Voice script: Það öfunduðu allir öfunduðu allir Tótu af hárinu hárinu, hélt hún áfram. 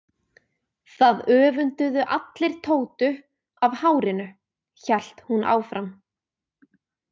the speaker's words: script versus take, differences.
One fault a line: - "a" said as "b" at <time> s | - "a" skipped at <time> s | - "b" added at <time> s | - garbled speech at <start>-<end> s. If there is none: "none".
- "öfunduðu allir" skipped at 2.5 s
- "hárinu" skipped at 4.3 s